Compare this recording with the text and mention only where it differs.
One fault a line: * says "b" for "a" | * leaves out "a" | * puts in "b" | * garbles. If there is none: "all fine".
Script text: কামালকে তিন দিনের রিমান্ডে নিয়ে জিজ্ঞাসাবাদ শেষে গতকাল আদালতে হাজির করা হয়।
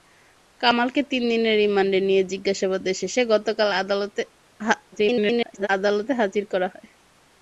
* garbles